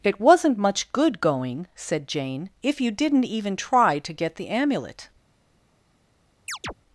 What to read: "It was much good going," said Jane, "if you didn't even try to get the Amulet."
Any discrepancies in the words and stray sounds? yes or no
yes